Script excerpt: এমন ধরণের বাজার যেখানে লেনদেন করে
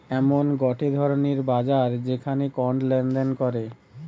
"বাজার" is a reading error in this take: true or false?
false